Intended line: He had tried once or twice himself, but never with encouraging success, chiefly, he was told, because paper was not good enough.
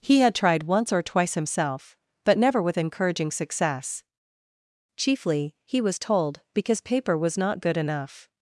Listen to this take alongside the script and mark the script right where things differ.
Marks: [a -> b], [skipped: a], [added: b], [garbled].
He had tried once or twice himself, but never with encouraging success, chiefly, he was told, because paper was not good enough.